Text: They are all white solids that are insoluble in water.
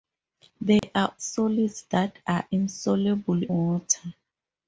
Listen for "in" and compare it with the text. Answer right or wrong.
wrong